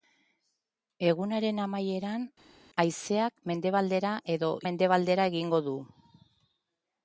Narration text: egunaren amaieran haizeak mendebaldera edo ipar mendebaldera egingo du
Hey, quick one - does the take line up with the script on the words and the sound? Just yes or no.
no